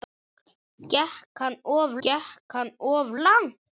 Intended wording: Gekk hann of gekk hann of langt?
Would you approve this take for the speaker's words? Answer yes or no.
yes